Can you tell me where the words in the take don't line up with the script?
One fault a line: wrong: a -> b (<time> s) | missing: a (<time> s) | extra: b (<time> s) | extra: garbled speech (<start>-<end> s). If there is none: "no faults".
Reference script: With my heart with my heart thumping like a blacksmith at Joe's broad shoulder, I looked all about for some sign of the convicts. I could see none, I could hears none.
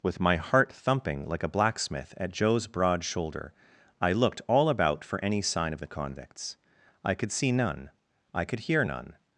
missing: with my heart (0.7 s)
wrong: some -> any (5.2 s)
wrong: hears -> hear (8.6 s)